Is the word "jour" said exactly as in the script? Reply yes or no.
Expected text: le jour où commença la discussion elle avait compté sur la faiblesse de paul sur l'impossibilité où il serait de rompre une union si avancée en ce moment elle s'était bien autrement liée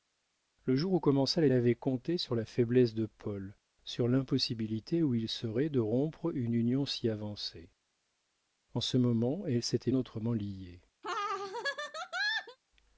yes